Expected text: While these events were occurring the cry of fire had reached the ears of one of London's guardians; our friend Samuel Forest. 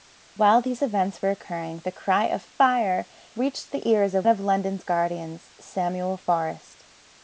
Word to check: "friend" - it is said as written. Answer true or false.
false